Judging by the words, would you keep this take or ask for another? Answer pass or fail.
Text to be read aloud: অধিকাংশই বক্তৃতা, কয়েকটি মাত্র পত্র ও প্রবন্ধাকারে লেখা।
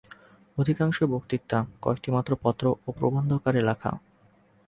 pass